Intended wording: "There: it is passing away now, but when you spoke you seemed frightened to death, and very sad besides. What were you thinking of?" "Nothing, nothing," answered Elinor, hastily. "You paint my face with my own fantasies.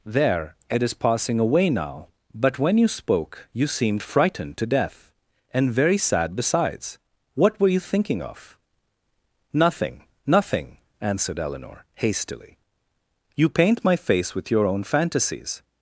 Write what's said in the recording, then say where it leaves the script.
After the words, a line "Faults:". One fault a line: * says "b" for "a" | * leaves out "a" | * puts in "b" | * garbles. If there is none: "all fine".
"There: it is passing away now, but when you spoke you seemed frightened to death, and very sad besides. What were you thinking of?" "Nothing, nothing," answered Elinor, hastily. "You paint my face with your own fantasies.
Faults:
* says "your" for "my"